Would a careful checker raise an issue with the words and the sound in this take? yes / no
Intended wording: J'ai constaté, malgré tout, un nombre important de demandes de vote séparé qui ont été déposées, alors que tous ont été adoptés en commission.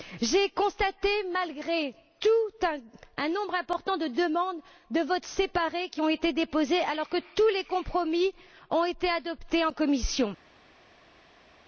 yes